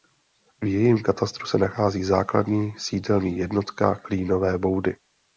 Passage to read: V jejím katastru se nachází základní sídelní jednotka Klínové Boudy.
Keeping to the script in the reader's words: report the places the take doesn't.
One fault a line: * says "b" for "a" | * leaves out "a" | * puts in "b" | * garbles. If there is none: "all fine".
all fine